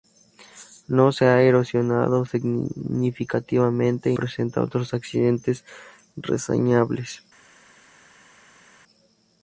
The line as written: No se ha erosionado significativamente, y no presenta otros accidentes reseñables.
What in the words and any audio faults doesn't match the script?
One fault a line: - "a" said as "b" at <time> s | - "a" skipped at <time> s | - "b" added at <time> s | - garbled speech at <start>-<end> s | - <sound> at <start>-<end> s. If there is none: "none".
- "no" skipped at 4.2 s